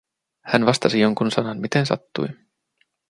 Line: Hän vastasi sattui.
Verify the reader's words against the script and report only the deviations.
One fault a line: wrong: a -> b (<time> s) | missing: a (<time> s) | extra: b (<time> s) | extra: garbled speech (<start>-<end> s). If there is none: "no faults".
extra: jonkun sanan miten (1.0 s)